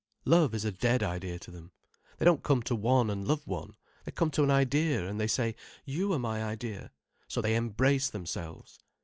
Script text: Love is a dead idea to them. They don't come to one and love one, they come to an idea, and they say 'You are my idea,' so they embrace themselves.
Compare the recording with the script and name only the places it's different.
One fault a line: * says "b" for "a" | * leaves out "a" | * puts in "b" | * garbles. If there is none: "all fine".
all fine